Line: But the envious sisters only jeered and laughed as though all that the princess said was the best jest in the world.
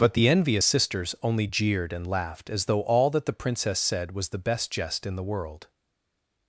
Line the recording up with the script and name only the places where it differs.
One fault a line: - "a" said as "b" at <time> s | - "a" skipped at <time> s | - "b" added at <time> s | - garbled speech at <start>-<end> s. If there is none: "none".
none